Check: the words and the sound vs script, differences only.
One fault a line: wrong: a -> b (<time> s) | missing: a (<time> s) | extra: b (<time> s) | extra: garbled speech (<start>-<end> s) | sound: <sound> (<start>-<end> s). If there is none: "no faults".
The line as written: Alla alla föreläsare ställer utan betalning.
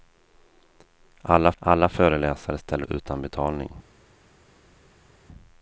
no faults